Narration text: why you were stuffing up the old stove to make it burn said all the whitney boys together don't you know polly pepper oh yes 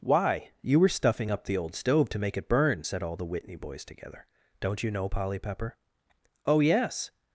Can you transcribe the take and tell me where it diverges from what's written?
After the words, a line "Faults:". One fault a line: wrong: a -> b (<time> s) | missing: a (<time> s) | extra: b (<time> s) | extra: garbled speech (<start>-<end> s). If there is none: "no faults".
why you were stuffing up the old stove to make it burn said all the whitney boys together don't you know polly pepper oh yes
Faults:
no faults